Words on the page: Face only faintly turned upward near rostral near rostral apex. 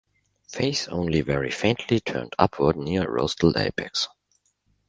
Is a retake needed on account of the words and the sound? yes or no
yes